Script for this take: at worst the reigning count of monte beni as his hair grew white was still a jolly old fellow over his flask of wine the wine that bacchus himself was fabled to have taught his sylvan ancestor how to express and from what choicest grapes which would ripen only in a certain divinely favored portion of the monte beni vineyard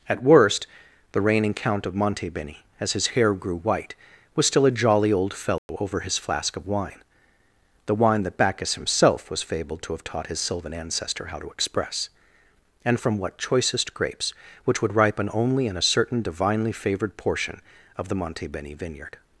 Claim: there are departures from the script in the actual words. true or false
false